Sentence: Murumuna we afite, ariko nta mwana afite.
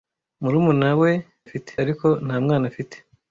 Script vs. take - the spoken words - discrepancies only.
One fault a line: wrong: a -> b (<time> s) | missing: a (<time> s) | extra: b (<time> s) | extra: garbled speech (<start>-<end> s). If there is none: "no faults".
no faults